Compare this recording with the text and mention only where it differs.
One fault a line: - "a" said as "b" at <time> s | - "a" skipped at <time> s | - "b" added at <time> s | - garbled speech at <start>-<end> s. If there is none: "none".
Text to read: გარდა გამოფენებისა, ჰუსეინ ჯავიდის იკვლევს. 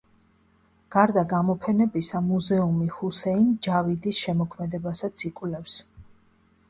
- "მუზეუმი" added at 2.3 s
- "შემოქმედებასაც" added at 4.2 s